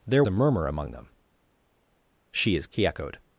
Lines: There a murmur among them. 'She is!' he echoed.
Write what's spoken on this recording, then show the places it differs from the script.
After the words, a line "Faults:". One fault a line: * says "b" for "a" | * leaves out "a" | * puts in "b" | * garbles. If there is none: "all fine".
There a murmur among them. 'She is!' he echoed.
Faults:
all fine